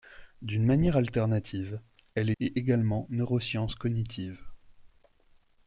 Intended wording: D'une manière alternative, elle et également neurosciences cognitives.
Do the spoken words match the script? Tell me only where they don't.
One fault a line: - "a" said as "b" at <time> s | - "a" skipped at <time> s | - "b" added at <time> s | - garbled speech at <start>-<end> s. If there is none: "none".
none